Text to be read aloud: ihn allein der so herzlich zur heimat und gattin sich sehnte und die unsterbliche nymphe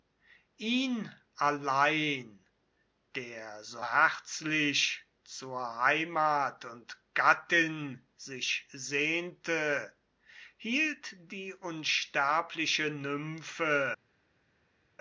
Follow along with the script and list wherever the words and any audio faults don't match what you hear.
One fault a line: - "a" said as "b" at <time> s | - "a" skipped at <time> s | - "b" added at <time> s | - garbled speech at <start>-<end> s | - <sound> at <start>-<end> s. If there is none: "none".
- "und" said as "hielt" at 10.6 s